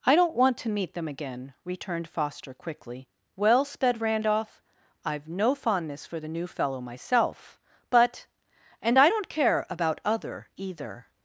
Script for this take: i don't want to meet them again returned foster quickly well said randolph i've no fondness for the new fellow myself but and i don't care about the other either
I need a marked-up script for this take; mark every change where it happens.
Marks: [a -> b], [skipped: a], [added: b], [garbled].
i don't want to meet them again returned foster quickly well [said -> sped] randolph i've no fondness for the new fellow myself but and i don't care about [skipped: the] other either